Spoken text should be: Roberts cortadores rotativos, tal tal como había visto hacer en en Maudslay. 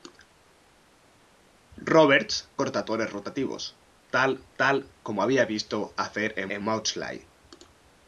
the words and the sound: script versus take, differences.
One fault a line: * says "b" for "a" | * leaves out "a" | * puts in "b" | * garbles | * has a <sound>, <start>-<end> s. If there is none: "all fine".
all fine